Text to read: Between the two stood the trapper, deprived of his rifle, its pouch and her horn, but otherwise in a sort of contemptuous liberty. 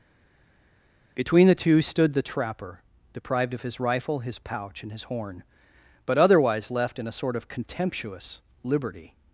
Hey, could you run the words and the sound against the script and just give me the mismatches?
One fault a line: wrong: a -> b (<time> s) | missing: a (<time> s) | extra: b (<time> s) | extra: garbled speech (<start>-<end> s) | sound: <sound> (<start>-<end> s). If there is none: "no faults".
wrong: its -> his (4.2 s)
wrong: her -> his (4.9 s)
extra: left (6.7 s)